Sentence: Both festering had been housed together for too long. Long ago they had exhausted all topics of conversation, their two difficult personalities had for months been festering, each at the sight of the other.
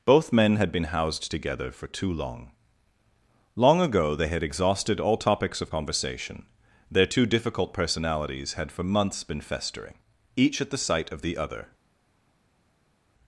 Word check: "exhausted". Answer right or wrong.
right